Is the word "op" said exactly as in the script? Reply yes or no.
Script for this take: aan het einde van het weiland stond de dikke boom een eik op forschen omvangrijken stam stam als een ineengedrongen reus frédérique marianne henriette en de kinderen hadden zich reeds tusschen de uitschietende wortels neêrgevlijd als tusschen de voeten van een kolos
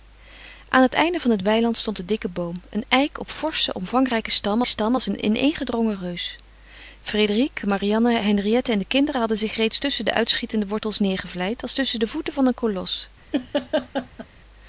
yes